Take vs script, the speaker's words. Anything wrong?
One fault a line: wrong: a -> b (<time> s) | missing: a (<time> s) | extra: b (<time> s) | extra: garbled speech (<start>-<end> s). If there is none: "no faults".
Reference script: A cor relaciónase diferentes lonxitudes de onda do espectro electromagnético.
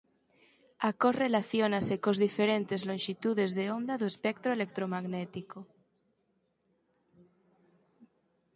extra: cos (2.0 s)